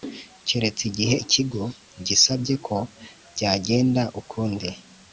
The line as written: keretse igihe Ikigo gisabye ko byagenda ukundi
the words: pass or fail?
pass